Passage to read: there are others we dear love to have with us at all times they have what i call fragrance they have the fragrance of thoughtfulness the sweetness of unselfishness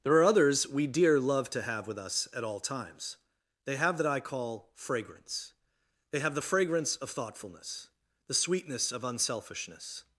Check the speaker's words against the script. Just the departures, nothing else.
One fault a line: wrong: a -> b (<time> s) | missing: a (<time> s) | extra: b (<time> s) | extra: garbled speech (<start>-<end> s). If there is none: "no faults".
wrong: what -> that (4.0 s)